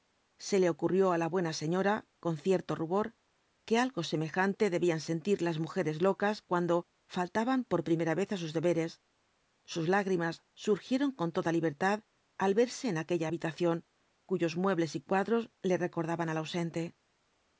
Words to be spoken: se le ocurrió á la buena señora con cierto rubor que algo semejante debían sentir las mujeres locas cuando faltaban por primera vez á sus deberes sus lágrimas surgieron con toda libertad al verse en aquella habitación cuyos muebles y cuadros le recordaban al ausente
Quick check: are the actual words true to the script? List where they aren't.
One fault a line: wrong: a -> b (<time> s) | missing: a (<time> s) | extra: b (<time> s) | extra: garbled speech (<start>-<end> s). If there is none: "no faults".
no faults